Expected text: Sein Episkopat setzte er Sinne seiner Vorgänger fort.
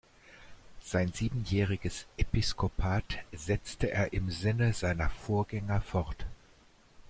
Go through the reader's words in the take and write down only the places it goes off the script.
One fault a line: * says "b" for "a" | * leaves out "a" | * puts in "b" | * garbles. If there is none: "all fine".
* puts in "siebenjähriges"
* puts in "im"